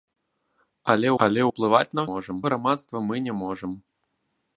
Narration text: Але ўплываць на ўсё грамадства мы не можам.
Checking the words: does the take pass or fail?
fail